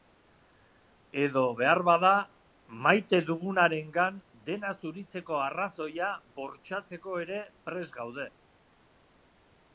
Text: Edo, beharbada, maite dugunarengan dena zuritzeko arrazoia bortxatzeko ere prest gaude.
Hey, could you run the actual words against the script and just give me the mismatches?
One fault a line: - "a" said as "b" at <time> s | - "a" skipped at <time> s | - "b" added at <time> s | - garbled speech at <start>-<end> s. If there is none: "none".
none